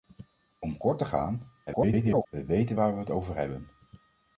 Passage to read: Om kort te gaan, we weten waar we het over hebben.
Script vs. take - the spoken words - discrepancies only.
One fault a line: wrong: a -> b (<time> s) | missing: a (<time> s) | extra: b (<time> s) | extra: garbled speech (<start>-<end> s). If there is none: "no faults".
extra: garbled speech (1.7-2.3 s)